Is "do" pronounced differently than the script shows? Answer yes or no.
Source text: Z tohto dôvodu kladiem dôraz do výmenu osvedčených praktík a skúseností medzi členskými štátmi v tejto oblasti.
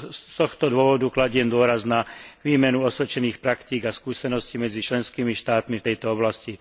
yes